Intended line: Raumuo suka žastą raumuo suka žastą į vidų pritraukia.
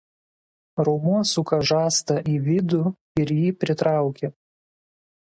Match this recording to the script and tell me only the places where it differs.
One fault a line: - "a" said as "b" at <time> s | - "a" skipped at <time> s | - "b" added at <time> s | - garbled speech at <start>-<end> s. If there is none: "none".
- "raumuo suka žastą į vidų" said as "į vidų ir jį" at 2.4 s